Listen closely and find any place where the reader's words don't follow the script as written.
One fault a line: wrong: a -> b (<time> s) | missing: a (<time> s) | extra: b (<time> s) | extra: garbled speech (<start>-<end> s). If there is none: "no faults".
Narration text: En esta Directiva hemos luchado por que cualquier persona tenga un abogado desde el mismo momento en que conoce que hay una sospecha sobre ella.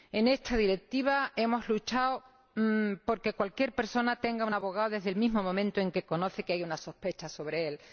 no faults